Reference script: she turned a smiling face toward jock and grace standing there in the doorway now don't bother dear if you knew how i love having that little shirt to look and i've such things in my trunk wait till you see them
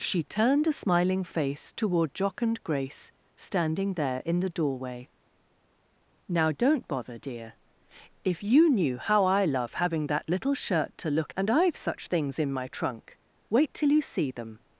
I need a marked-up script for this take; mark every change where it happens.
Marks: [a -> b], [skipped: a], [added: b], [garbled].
she turned a smiling face toward jock and grace standing there in the doorway now don't bother dear if you knew how i love having that little shirt to look and i've such things in my trunk wait till you see them